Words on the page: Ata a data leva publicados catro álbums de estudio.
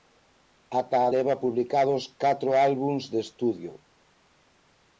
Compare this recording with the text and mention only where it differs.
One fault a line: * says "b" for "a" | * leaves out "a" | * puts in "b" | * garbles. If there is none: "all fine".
* leaves out "data"